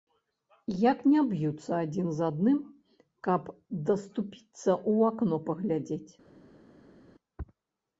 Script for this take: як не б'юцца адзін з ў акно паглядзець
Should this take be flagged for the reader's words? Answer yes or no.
yes